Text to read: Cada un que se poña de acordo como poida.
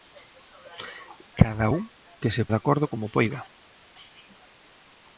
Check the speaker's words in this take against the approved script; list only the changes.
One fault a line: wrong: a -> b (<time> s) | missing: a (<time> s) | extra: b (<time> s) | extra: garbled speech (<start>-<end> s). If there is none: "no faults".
missing: poña (2.4 s)